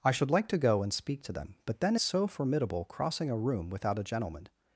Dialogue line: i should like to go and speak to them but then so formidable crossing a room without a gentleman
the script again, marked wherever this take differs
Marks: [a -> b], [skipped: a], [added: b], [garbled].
i should like to go and speak to them but then so formidable crossing a room without a gentleman